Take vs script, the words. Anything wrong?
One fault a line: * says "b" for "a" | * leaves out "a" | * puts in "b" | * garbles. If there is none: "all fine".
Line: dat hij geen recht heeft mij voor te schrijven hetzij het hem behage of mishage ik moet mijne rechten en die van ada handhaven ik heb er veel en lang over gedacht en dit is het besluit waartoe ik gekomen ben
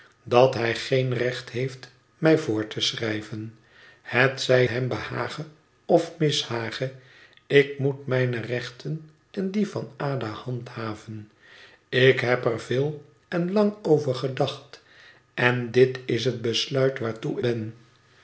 * leaves out "het"
* leaves out "ik gekomen"